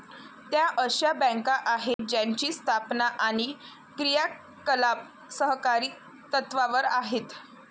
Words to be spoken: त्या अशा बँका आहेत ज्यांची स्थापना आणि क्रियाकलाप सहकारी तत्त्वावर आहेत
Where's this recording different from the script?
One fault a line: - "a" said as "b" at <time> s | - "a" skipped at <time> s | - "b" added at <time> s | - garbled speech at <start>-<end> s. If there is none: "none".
none